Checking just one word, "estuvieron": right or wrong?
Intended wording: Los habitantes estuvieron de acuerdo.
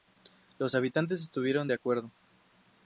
right